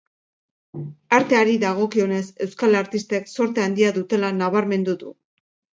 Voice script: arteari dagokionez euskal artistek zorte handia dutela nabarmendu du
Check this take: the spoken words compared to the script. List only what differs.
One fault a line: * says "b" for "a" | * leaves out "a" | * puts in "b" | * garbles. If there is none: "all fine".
all fine